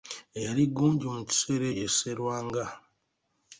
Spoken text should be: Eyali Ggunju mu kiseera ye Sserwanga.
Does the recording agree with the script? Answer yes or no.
yes